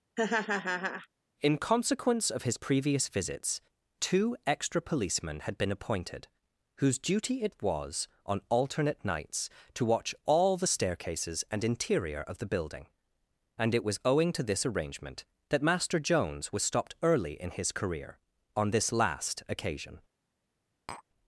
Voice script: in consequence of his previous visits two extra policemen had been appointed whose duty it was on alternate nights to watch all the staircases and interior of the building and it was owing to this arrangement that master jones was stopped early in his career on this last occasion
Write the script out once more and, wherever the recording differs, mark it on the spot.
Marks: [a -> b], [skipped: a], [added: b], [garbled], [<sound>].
[laugh] in consequence of his previous visits two extra policemen had been appointed whose duty it was on alternate nights to watch all the staircases and interior of the building and it was owing to this arrangement that master jones was stopped early in his career on this last occasion [tap]